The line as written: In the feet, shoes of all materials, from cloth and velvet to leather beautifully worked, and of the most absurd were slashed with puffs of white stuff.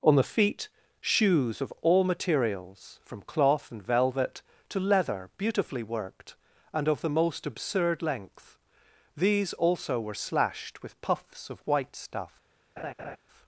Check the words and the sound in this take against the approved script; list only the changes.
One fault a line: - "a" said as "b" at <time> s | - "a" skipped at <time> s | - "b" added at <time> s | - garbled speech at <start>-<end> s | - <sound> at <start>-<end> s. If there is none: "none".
- "In" said as "On" at 0.0 s
- "length these also" added at 8.0 s
- laugh at 12.8-13.2 s